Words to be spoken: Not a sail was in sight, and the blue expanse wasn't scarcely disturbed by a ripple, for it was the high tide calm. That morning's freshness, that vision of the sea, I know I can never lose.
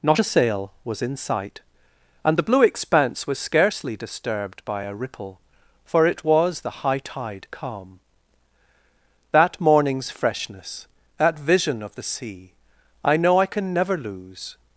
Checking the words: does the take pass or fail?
fail